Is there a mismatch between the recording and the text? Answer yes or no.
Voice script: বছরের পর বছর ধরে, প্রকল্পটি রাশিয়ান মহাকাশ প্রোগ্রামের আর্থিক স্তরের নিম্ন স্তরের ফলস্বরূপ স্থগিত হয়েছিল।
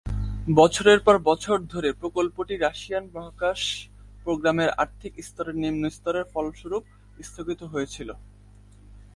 no